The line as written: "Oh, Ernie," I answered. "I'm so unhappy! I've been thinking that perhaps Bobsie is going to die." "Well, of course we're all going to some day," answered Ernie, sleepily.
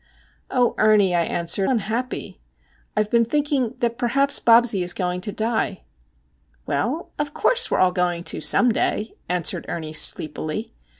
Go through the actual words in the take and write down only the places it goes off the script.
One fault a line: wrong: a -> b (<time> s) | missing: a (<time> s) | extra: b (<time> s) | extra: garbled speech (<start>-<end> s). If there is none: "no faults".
missing: I'm so (1.7 s)